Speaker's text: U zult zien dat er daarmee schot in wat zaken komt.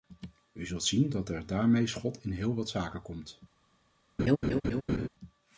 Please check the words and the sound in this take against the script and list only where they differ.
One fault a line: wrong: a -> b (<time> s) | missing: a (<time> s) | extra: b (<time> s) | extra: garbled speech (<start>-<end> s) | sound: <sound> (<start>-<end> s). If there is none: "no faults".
extra: heel (2.3 s)
sound: laugh (4.2-5.1 s)